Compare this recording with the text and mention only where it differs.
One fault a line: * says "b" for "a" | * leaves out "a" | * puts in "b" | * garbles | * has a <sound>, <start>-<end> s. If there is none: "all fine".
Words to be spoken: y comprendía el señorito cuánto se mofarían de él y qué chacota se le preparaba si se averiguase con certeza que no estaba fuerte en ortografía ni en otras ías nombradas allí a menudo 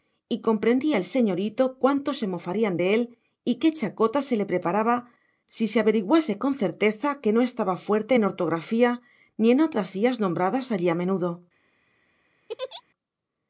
* has a laugh, 12.5-12.8 s